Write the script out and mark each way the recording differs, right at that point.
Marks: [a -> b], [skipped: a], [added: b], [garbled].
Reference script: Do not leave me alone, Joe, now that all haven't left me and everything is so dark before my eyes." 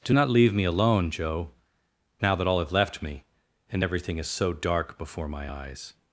Do not leave me alone, Joe, now that all [haven't -> have] left me and everything is so dark before my eyes."